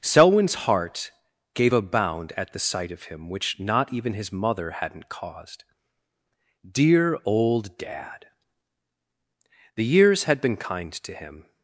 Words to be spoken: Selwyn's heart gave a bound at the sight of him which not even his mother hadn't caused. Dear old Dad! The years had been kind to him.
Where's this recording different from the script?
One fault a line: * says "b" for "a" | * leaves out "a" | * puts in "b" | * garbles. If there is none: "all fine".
all fine